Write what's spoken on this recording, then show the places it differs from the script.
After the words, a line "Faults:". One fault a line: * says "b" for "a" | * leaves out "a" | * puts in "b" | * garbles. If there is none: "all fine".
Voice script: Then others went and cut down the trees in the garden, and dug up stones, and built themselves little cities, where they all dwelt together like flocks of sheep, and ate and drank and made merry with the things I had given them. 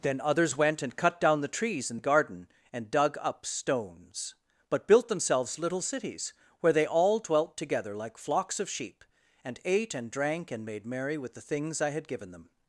Then others went and cut down the trees in the garden, and dug up stones, but built themselves little cities, where they all dwelt together like flocks of sheep, and ate and drank and made merry with the things I had given them.
Faults:
* says "but" for "and"